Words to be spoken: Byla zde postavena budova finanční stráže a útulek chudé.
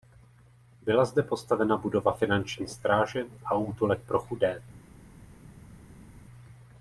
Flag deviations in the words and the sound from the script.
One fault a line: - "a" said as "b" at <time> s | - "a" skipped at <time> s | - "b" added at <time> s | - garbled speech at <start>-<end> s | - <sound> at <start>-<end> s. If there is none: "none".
- "pro" added at 4.1 s